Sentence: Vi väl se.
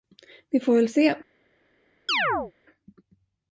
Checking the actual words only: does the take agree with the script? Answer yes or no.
no